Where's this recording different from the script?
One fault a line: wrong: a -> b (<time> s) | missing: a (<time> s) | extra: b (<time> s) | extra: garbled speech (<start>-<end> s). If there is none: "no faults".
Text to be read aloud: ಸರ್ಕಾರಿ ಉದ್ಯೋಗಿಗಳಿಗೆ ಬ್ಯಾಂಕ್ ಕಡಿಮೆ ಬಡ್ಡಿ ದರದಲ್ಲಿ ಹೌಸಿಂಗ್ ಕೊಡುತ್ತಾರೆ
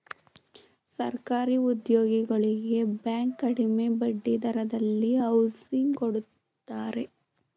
no faults